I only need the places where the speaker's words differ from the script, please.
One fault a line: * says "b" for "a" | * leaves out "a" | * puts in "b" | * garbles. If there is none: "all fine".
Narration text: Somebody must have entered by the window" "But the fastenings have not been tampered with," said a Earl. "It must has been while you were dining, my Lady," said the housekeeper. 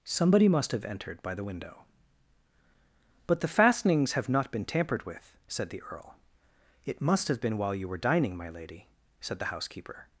* says "the" for "a"
* says "have" for "has"